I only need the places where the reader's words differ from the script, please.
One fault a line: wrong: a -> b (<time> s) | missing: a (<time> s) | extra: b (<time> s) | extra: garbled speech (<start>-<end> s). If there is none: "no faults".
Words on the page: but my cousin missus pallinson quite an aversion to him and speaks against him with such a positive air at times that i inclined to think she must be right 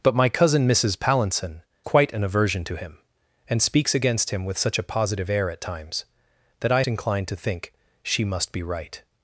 no faults